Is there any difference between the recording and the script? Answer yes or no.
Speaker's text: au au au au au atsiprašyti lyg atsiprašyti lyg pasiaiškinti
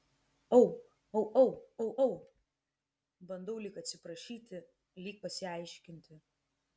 yes